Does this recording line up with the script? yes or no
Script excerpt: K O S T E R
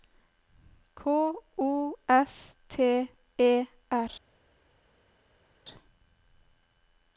yes